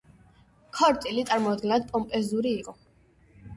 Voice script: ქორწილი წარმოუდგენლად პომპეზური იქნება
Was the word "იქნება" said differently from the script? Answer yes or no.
yes